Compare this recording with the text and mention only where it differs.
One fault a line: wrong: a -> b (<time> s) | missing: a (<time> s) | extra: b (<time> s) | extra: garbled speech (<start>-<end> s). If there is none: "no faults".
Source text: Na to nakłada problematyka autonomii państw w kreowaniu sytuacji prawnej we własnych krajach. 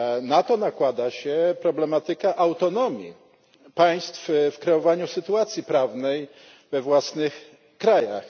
extra: się (1.1 s)